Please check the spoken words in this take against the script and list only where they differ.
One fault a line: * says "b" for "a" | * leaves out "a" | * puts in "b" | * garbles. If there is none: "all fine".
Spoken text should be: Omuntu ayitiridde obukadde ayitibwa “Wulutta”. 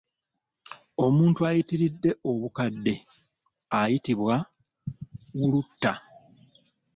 all fine